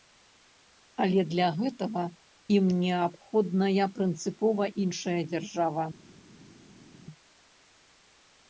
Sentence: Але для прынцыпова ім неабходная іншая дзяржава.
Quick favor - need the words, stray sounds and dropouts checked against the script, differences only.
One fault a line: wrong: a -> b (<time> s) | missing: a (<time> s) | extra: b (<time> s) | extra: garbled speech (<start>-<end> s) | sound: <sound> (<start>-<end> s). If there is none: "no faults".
wrong: прынцыпова -> гэтага (1.6 s)
extra: прынцыпова (4.0 s)